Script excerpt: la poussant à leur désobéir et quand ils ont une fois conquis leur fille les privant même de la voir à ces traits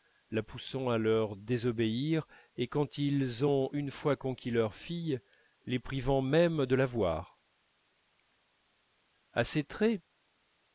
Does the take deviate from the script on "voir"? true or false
false